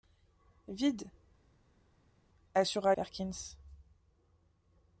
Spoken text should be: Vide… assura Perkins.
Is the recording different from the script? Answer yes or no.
no